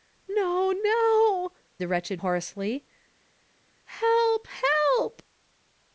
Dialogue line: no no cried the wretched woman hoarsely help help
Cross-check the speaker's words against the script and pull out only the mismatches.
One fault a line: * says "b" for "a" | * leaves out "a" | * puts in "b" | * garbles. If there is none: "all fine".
* leaves out "cried"
* leaves out "woman"